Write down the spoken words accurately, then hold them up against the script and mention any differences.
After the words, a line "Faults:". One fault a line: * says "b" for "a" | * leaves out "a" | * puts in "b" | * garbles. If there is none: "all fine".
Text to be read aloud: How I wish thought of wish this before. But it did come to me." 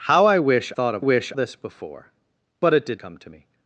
How I wish thought of wish this before. But it did come to me."
Faults:
all fine